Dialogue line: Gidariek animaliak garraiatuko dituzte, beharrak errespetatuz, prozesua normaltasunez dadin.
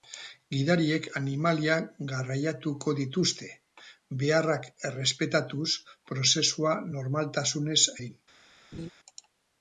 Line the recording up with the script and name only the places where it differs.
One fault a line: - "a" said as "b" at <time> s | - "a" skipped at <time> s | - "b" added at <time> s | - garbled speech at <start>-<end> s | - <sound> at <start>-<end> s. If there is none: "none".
- laugh at 8.7-8.9 s